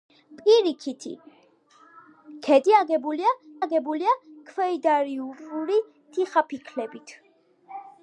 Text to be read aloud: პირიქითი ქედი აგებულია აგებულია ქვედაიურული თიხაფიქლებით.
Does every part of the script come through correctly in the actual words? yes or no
yes